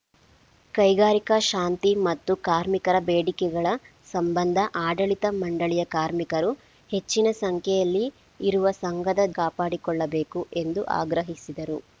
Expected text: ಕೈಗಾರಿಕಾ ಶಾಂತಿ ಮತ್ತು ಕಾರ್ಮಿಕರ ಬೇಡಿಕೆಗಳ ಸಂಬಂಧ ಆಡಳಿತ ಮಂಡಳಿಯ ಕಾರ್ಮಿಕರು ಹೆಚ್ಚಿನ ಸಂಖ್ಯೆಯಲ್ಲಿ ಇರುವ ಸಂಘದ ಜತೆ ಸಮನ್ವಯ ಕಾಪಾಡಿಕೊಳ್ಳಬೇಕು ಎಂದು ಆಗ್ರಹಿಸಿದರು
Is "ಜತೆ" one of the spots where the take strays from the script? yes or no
yes